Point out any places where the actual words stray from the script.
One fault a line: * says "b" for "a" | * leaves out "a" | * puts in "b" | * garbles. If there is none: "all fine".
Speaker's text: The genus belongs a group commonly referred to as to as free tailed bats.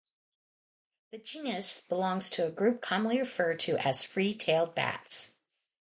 * puts in "to"
* leaves out "to as"